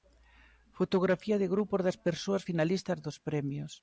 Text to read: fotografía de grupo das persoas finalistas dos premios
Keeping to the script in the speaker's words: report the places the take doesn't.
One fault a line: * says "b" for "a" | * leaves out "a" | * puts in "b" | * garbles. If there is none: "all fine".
all fine